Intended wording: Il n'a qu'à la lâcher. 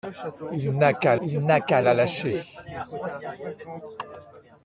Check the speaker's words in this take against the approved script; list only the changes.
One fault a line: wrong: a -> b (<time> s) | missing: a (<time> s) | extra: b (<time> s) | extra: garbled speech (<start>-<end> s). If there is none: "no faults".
extra: il n'a qu'à (1.2 s)